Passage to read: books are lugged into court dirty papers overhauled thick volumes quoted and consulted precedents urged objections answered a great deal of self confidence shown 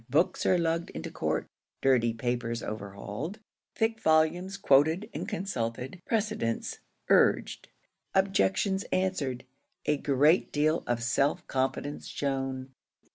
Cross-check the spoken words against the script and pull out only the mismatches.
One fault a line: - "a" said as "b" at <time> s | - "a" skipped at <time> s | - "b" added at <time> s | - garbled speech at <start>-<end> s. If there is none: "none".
none